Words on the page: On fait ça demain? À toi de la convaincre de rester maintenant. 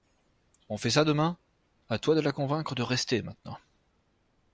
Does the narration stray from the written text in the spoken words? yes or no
no